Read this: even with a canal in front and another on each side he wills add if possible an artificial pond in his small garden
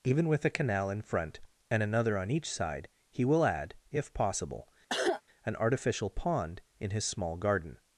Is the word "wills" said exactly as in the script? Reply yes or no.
no